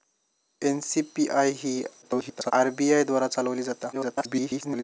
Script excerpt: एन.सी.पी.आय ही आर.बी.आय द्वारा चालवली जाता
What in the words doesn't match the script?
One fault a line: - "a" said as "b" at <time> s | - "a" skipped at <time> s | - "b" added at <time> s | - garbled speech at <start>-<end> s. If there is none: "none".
- garbled speech at 2.0-2.5 s
- garbled speech at 3.9-4.8 s